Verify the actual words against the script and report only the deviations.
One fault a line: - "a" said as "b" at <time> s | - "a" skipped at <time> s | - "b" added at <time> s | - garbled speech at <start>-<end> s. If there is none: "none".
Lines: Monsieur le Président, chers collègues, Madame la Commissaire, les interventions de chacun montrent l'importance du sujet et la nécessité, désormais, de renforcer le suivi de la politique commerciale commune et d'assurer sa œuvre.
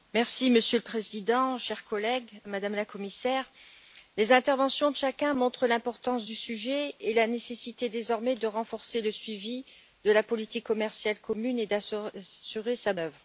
none